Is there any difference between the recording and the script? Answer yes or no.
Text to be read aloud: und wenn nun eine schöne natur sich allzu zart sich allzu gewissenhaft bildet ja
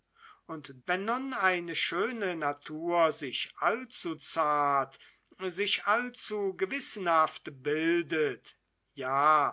no